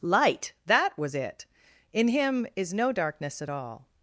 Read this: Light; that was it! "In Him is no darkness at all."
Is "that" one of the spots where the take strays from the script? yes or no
no